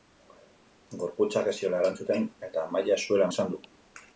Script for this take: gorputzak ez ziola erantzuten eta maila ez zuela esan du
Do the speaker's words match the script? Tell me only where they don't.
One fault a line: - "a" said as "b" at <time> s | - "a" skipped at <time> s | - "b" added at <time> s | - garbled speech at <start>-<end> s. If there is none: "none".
none